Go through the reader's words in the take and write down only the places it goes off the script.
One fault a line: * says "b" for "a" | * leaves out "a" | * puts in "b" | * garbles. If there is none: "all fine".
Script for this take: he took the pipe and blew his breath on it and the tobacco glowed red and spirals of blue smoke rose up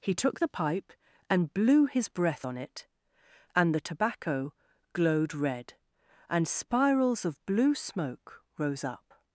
all fine